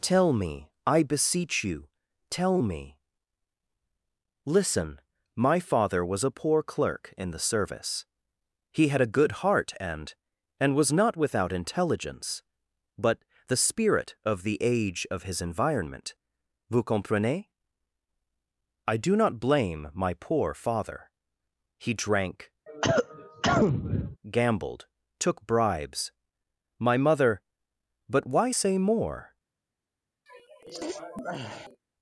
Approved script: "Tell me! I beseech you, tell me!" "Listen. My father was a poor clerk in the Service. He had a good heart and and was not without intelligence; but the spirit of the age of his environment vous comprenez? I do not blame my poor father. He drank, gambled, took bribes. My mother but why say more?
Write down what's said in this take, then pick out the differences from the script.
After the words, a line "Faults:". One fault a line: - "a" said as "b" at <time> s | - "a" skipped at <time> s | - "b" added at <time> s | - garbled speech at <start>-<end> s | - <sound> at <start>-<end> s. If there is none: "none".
"Tell me! I beseech you, tell me!" "Listen. My father was a poor clerk in the Service. He had a good heart and and was not without intelligence; but the spirit of the age of his environment vous comprenez? I do not blame my poor father. He drank, gambled, took bribes. My mother but why say more?
Faults:
- cough at 22.7-24.2 s
- sneeze at 30.3-31.8 s